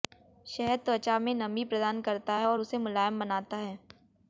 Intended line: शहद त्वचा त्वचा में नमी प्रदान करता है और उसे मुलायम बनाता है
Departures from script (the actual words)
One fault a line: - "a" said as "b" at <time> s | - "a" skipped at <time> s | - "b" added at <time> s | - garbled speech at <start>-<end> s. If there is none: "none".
- "त्वचा" skipped at 1.2 s